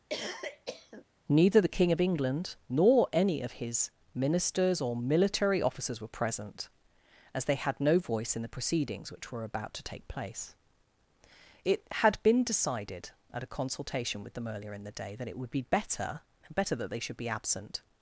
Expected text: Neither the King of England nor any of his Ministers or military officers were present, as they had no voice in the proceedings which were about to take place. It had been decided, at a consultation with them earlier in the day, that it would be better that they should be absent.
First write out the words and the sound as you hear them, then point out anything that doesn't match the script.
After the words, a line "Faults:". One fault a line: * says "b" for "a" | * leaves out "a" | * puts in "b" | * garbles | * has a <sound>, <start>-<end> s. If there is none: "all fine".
Neither the King of England nor any of his Ministers or military officers were present, as they had no voice in the proceedings which were about to take place. It had been decided, at a consultation with them earlier in the day, that it would be better better that they should be absent.
Faults:
* has a cough, 0.1-1.0 s
* puts in "better"